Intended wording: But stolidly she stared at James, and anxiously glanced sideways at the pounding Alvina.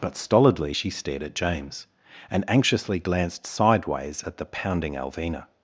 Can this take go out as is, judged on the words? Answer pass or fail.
pass